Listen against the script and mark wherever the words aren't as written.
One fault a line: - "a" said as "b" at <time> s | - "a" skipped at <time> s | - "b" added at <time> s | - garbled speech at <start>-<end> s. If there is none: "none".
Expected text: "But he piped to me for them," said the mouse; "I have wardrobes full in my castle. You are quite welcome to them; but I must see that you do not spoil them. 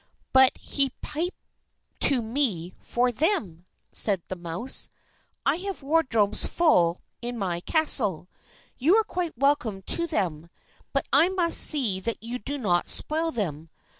none